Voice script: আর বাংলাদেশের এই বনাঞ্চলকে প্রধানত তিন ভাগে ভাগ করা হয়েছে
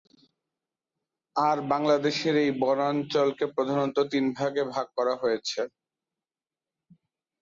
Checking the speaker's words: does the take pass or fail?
pass